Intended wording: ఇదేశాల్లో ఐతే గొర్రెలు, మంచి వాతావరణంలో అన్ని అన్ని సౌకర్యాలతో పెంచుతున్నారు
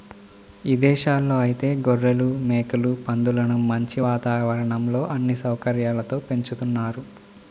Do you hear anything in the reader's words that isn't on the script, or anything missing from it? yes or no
yes